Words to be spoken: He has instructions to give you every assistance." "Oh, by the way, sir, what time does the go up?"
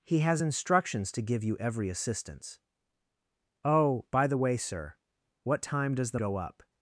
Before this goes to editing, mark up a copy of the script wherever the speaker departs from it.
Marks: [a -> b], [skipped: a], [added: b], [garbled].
He has instructions to give you every assistance." "Oh, by the way, sir, what time does the go up?"